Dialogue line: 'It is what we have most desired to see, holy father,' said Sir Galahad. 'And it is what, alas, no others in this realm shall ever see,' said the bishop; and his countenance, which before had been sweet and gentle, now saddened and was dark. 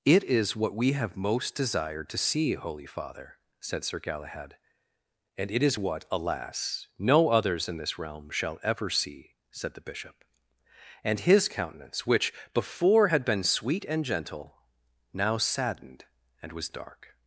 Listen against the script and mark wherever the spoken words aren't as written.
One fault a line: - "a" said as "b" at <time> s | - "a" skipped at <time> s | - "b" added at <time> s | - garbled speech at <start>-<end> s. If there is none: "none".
none